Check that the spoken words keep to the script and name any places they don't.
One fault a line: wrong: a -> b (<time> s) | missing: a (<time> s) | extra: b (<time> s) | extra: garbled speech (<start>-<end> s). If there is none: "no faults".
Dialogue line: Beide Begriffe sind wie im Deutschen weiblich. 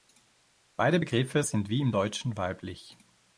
no faults